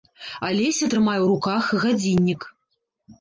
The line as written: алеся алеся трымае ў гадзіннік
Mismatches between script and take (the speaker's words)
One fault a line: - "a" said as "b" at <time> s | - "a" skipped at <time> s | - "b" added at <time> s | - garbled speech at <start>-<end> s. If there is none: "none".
- "алеся" skipped at 0.9 s
- "руках" added at 1.3 s